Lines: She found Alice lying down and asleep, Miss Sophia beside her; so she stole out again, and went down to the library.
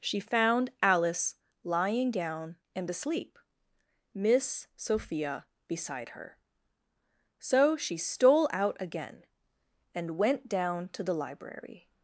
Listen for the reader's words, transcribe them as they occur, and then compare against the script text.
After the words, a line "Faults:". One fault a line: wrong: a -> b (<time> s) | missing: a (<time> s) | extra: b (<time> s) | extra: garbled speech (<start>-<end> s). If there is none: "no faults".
She found Alice lying down and asleep, Miss Sophia beside her; so she stole out again, and went down to the library.
Faults:
no faults